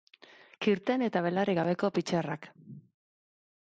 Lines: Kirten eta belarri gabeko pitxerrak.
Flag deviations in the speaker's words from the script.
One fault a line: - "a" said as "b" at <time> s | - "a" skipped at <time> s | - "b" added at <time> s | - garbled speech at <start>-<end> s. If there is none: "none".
none